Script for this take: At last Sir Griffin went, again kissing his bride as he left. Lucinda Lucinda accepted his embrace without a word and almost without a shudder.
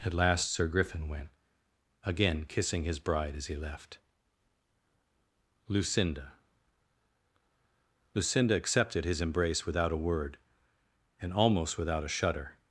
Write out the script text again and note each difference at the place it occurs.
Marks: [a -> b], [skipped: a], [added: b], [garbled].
At last Sir Griffin went, again kissing his bride as he left. Lucinda Lucinda accepted his embrace without a word and almost without a shudder.